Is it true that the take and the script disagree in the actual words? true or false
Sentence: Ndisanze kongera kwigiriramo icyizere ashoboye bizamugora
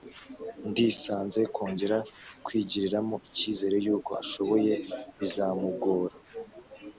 true